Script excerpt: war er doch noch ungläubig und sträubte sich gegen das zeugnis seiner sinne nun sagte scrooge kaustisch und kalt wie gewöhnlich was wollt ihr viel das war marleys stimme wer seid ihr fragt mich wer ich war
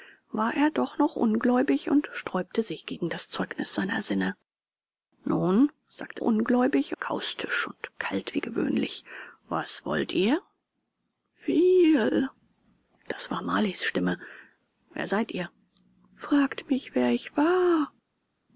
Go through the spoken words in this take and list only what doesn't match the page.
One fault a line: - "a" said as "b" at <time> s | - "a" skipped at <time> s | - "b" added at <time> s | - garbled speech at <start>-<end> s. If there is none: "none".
- "scrooge" said as "ungläubig" at 6.2 s